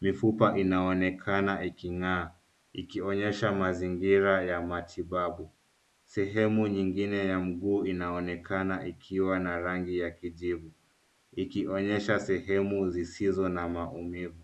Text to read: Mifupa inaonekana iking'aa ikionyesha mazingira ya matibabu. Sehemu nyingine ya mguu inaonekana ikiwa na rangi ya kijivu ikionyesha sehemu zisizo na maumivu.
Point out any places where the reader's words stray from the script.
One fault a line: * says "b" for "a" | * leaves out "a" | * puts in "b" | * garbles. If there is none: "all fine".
all fine